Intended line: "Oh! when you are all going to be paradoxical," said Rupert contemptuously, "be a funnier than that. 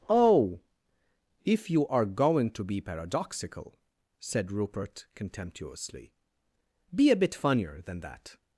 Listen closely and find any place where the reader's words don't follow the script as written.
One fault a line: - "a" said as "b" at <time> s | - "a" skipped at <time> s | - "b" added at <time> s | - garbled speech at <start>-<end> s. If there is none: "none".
- "when" said as "if" at 1.4 s
- "all" skipped at 2.0 s
- "bit" added at 7.2 s